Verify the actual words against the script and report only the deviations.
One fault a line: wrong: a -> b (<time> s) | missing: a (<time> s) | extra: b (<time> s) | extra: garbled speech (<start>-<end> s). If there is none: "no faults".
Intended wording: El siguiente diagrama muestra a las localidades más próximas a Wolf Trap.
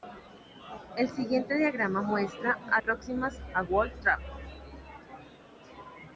missing: las localidades más (2.8 s)